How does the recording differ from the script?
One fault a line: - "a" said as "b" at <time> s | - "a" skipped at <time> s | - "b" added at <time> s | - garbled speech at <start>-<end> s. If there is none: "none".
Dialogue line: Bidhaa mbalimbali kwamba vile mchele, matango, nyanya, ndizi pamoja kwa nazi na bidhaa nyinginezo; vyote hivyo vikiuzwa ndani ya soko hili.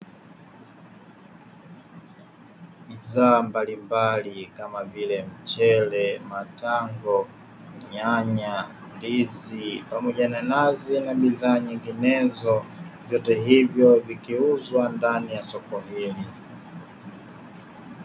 - "kwamba" said as "kama" at 4.6 s
- "kwa" said as "na" at 10.3 s